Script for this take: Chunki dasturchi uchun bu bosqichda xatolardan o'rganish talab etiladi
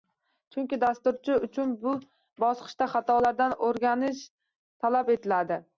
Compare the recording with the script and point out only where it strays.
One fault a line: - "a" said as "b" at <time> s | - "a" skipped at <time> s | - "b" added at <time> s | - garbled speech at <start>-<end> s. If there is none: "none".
none